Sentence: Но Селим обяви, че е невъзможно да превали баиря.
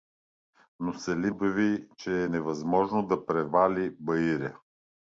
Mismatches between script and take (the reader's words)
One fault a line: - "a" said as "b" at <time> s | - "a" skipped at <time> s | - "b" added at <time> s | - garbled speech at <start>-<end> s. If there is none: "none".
none